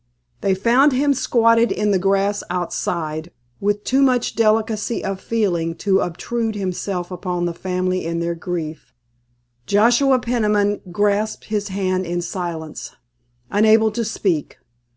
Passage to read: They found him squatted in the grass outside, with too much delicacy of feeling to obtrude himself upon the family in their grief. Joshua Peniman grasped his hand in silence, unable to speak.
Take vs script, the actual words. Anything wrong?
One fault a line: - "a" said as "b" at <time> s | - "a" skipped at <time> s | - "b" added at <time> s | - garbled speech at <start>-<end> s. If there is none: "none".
none